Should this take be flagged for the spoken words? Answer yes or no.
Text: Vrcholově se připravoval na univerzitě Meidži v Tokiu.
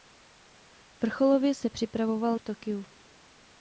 yes